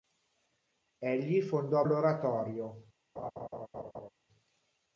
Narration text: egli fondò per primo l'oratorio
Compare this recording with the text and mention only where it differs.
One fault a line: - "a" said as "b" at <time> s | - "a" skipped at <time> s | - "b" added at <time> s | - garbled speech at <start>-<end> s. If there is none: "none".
- "per primo" skipped at 1.9 s